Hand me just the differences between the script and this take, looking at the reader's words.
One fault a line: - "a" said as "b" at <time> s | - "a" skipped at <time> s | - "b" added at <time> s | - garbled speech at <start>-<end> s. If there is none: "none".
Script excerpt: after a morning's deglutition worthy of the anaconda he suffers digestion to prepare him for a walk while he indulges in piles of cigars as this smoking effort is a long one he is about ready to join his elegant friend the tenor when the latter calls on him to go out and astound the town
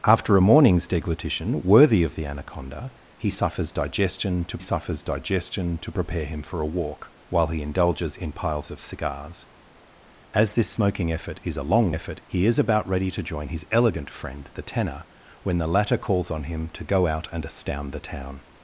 - "suffers digestion to" added at 4.6 s
- "one" said as "effort" at 11.9 s